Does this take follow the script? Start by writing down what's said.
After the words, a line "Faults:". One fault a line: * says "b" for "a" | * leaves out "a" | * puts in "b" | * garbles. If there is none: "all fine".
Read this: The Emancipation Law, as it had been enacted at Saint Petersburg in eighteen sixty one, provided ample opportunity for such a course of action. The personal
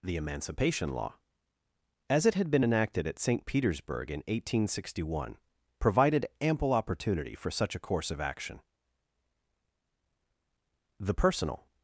The Emancipation Law, as it had been enacted at Saint Petersburg in eighteen sixty one, provided ample opportunity for such a course of action. The personal
Faults:
all fine